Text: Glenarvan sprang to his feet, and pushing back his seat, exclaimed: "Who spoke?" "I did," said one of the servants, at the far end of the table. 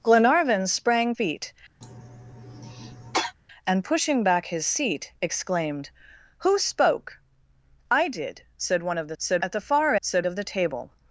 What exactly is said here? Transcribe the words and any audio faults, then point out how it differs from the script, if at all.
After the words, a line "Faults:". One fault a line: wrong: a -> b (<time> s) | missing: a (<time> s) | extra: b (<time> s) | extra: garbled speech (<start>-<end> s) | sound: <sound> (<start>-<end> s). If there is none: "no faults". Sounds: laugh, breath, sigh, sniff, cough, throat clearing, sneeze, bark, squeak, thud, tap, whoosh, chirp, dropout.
Glenarvan sprang feet, and pushing back his seat, exclaimed: "Who spoke?" "I did," said one of the said, at the far said of the table.
Faults:
missing: to his (1.1 s)
sound: cough (1.8-3.3 s)
wrong: servants -> said (9.2 s)
wrong: end -> said (10.0 s)